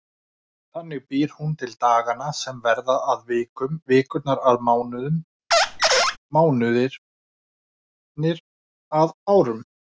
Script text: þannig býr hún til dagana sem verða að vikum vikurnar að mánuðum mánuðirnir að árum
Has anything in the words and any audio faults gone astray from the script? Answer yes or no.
yes